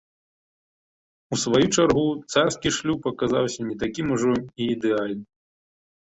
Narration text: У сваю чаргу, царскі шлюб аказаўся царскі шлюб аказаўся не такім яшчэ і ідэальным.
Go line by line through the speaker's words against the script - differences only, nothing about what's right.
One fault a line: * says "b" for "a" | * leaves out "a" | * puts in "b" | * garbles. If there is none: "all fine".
* leaves out "царскі шлюб аказаўся"
* says "ужо" for "яшчэ"